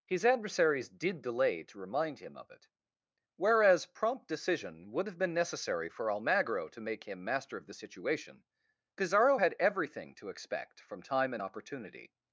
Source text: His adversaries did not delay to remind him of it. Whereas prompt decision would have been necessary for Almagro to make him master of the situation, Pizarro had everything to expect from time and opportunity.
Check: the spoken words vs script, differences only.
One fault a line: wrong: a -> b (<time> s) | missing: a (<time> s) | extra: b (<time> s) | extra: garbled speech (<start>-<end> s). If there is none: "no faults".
missing: not (1.2 s)